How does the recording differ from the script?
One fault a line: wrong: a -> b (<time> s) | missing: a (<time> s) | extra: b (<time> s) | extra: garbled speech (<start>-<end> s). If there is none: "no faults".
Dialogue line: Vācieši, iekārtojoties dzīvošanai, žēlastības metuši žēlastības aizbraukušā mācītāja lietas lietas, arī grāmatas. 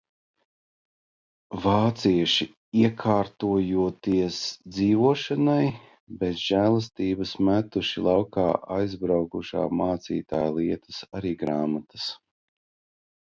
extra: bez (6.2 s)
wrong: žēlastības -> laukā (8.1 s)
missing: lietas (11.0 s)